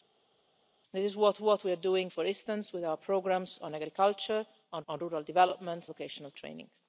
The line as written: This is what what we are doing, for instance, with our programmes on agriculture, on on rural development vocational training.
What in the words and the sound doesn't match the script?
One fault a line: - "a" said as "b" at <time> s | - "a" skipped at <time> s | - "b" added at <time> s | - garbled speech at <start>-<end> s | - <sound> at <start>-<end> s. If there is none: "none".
none